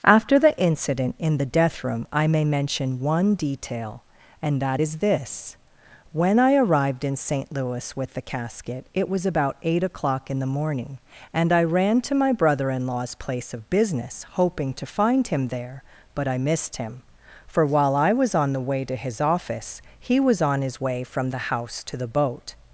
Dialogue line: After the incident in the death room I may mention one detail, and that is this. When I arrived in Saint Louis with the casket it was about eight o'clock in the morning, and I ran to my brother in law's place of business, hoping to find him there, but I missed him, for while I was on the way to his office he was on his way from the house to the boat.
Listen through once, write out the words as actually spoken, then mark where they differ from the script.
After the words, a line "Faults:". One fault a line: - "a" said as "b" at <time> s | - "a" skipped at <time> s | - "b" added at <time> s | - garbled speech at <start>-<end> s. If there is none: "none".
After the incident in the death room I may mention one detail, and that is this. When I arrived in Saint Louis with the casket it was about eight o'clock in the morning, and I ran to my brother in law's place of business, hoping to find him there, but I missed him, for while I was on the way to his office he was on his way from the house to the boat.
Faults:
none